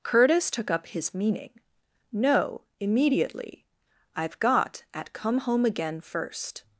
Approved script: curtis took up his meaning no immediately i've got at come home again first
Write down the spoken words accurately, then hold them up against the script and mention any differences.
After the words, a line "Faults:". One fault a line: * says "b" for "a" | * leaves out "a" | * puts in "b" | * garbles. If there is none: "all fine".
curtis took up his meaning no immediately i've got at come home again first
Faults:
all fine